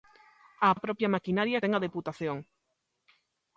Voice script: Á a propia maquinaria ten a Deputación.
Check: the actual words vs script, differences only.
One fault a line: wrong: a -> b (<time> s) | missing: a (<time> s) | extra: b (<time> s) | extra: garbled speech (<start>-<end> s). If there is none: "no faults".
no faults